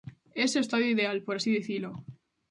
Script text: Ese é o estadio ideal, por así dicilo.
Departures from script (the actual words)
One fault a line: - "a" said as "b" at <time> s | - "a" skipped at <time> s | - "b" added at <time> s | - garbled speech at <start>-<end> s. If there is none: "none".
none